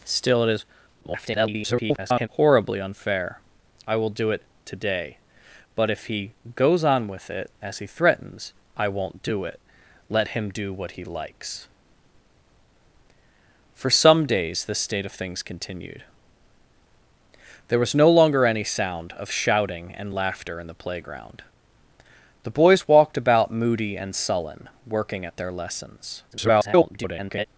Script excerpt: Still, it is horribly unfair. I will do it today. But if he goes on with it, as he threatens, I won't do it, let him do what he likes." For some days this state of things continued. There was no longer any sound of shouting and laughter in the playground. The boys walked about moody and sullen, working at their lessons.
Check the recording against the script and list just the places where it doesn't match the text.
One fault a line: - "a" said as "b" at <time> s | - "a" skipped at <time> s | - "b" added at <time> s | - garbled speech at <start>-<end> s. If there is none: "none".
- garbled speech at 1.0-2.3 s
- garbled speech at 26.3-27.5 s